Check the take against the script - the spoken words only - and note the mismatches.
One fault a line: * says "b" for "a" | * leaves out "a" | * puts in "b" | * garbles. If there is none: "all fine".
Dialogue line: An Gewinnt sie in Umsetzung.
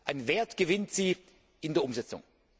* puts in "Wert"
* puts in "der"